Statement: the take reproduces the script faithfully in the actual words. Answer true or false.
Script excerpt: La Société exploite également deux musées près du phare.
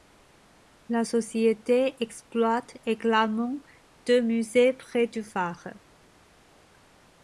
true